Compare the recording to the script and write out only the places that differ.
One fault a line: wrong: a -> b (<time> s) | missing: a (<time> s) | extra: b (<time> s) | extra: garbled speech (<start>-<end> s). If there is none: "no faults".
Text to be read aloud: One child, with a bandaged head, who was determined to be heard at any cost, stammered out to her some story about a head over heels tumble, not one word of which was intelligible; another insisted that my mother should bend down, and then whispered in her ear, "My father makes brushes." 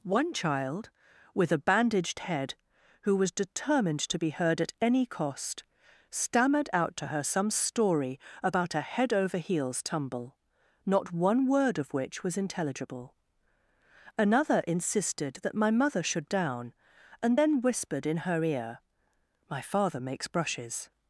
missing: bend (16.3 s)